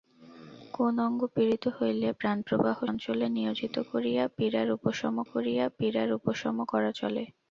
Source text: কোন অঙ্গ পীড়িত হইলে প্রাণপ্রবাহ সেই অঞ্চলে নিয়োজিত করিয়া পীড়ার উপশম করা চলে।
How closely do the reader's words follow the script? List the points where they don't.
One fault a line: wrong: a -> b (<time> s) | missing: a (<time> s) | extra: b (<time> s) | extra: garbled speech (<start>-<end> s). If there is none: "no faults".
missing: সেই (2.8 s)
extra: করিয়া পীড়ার উপশম (5.3 s)